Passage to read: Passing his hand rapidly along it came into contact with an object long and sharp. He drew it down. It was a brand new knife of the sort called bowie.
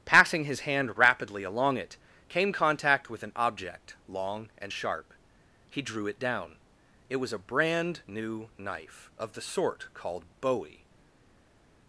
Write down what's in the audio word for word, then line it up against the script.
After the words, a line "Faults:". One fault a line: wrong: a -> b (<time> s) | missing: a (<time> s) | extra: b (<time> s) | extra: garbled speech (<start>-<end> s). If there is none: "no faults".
Passing his hand rapidly along it came contact with an object long and sharp. He drew it down. It was a brand new knife of the sort called bowie.
Faults:
missing: into (2.5 s)